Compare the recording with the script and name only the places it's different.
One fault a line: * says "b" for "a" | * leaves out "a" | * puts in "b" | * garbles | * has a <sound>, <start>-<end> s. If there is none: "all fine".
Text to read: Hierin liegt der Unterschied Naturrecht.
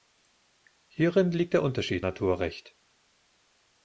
all fine